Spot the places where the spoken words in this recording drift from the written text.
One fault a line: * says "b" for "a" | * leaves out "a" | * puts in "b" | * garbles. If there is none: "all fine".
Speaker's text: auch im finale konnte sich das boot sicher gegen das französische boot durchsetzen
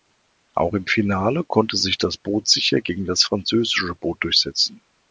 all fine